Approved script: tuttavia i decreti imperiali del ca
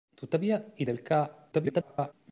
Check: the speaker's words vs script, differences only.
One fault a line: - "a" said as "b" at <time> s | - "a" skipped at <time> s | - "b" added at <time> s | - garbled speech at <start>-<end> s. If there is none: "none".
- "decreti imperiali" skipped at 0.8 s
- garbled speech at 1.5-2.1 s